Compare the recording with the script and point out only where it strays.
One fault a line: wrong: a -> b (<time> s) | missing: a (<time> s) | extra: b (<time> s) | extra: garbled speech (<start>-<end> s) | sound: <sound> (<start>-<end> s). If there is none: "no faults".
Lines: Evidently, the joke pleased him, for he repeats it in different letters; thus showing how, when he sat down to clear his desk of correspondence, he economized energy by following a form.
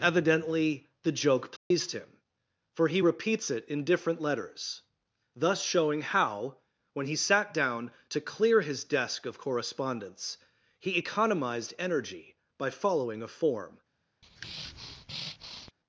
sound: dropout (1.6-1.7 s)
sound: breath (14.2-15.7 s)